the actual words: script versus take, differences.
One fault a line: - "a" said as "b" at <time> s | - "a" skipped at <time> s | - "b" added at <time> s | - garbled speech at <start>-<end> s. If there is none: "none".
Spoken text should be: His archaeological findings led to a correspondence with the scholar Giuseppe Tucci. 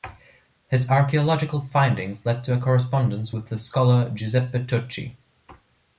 none